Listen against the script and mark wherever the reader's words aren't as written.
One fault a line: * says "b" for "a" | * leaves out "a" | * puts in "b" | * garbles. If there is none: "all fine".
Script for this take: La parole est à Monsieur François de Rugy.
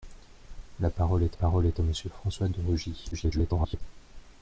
* puts in "parole est"
* garbles